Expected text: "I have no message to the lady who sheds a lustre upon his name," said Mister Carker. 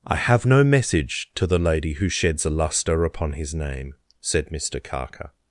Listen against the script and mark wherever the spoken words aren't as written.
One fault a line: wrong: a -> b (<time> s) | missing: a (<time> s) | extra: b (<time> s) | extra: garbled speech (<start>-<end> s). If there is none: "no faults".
no faults